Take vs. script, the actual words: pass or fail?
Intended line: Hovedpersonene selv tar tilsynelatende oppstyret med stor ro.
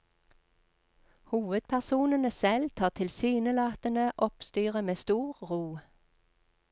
pass